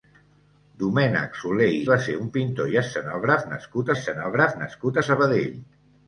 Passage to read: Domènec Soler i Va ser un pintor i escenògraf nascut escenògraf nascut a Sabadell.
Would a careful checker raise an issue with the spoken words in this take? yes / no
no